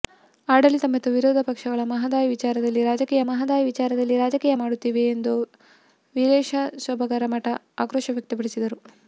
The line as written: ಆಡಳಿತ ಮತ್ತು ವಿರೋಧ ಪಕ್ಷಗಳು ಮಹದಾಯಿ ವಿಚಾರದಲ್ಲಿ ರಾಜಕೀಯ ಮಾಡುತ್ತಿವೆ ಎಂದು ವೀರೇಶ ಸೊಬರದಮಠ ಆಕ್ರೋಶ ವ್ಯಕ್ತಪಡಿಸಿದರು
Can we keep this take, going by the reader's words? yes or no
no